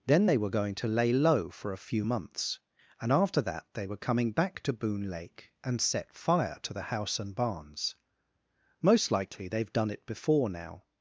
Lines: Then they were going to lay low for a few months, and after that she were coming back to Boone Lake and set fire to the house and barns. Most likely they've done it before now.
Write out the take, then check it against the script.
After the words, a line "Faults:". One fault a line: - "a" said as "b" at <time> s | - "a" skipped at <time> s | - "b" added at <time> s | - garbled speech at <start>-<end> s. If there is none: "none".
Then they were going to lay low for a few months, and after that they were coming back to Boone Lake and set fire to the house and barns. Most likely they've done it before now.
Faults:
- "she" said as "they" at 3.7 s